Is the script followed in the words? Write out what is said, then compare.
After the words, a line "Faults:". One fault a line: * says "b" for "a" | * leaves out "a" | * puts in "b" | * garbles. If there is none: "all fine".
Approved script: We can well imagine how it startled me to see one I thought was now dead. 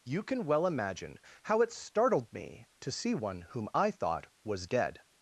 You can well imagine how it startled me to see one whom I thought was dead.
Faults:
* says "You" for "We"
* puts in "whom"
* leaves out "now"